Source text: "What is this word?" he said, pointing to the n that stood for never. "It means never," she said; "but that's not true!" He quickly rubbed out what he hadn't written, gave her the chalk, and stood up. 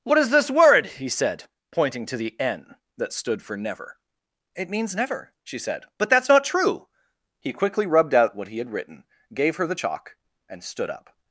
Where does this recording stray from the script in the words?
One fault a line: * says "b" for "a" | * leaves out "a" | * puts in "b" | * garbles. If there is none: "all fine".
* says "had" for "hadn't"